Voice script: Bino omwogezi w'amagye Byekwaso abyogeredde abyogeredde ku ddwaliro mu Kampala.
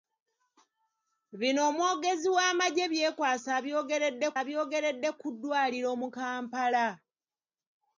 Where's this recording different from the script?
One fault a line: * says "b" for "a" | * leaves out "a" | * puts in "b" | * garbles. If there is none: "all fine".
all fine